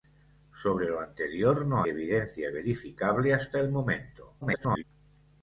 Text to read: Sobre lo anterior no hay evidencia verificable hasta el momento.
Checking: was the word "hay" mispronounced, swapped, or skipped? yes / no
yes